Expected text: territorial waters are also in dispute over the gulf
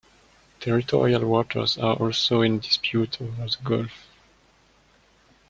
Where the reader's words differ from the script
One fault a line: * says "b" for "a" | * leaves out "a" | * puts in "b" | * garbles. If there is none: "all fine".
all fine